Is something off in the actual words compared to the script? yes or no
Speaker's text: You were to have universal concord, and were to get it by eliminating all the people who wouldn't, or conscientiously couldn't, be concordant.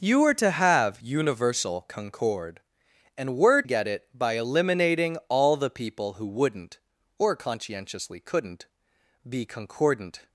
yes